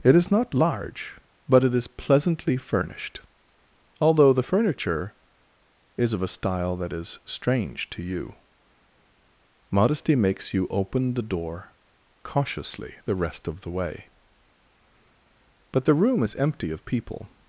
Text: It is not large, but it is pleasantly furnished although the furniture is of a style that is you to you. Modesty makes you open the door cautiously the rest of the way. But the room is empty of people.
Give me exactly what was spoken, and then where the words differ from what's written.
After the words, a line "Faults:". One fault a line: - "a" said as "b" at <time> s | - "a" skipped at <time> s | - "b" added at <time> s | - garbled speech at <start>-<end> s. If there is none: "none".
It is not large, but it is pleasantly furnished although the furniture is of a style that is strange to you. Modesty makes you open the door cautiously the rest of the way. But the room is empty of people.
Faults:
- "you" said as "strange" at 7.2 s